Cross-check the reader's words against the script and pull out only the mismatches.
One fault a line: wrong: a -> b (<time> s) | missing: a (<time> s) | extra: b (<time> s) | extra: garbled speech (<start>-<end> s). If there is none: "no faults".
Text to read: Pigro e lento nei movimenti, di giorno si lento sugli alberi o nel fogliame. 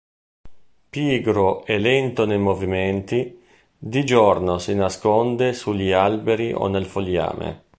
wrong: lento -> nasconde (4.7 s)